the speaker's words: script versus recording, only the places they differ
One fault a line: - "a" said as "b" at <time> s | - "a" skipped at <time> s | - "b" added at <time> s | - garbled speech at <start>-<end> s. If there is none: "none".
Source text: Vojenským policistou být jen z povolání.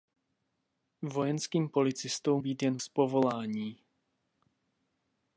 none